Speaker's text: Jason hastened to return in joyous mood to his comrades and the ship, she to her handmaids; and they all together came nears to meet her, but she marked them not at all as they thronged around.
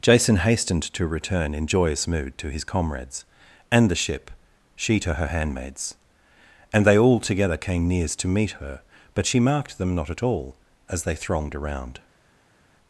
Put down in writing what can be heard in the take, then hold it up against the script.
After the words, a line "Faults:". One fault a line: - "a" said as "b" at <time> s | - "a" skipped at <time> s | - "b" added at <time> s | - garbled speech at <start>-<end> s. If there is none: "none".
Jason hastened to return in joyous mood to his comrades and the ship, she to her handmaids; and they all together came nears to meet her, but she marked them not at all as they thronged around.
Faults:
none